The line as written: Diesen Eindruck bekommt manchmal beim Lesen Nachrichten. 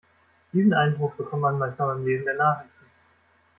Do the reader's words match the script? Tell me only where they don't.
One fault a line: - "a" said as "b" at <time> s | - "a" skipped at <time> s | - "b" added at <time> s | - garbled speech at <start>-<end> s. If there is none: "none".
- "man" added at 1.4 s
- "der" added at 2.2 s